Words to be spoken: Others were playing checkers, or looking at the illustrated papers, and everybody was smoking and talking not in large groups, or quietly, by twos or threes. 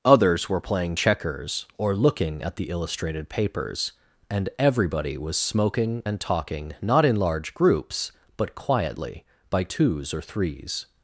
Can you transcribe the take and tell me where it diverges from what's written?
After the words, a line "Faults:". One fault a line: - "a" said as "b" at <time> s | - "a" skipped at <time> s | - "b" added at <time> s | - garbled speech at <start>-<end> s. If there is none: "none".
Others were playing checkers, or looking at the illustrated papers, and everybody was smoking and talking not in large groups, but quietly, by twos or threes.
Faults:
- "or" said as "but" at 8.3 s